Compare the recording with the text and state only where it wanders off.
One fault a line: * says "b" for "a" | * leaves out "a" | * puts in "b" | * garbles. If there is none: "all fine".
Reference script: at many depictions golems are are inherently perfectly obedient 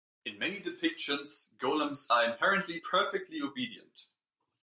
* says "in" for "at"
* leaves out "are"